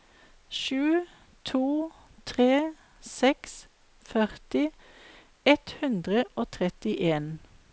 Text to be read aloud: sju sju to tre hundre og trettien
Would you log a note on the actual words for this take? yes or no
yes